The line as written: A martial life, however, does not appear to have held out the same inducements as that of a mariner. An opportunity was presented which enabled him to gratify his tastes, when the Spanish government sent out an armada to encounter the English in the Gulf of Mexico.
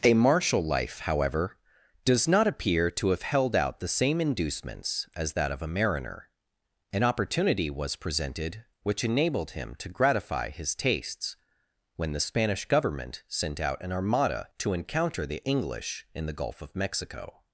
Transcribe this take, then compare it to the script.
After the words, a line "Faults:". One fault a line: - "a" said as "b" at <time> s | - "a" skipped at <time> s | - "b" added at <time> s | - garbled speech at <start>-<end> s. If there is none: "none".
A martial life, however, does not appear to have held out the same inducements as that of a mariner. An opportunity was presented which enabled him to gratify his tastes, when the Spanish government sent out an armada to encounter the English in the Gulf of Mexico.
Faults:
none